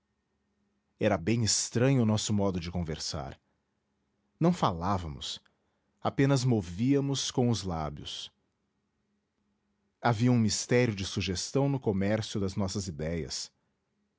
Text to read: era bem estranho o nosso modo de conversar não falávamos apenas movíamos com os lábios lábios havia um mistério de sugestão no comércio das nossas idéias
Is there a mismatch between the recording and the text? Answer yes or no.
yes